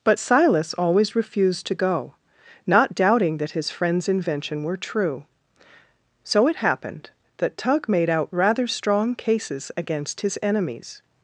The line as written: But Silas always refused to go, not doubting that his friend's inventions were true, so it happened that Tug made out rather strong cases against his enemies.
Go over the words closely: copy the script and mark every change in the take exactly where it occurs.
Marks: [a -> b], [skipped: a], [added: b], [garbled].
But Silas always refused to go, not doubting that his friend's [inventions -> invention] were true, so it happened that Tug made out rather strong cases against his enemies.